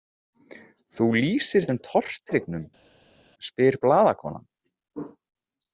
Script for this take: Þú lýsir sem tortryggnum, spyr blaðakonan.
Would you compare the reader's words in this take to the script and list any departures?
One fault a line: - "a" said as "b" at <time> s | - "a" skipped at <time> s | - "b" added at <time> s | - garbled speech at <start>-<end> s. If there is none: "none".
none